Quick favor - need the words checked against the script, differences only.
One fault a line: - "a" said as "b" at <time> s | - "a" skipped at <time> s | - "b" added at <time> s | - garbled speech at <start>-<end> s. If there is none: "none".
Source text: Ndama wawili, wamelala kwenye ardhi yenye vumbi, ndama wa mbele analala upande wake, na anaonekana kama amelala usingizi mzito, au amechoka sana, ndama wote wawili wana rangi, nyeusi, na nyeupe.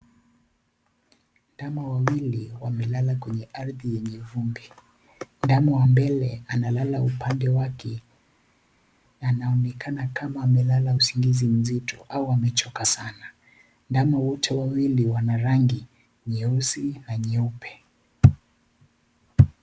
none